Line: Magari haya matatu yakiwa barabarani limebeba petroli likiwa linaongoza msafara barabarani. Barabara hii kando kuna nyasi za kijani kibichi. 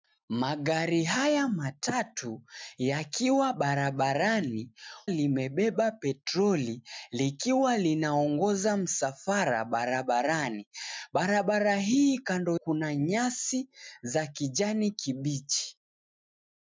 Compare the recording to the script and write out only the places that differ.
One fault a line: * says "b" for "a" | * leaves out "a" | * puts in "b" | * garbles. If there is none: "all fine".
all fine